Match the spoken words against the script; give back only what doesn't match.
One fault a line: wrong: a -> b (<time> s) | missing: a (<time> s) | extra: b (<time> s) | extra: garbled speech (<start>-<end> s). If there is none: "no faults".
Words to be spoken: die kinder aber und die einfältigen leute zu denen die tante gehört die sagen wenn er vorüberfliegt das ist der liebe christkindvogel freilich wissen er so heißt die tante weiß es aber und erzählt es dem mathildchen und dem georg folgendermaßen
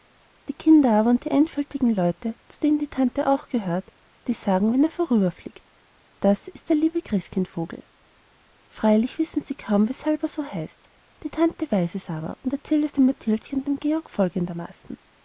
extra: auch (3.3 s)
extra: sie kaum weshalb (9.4 s)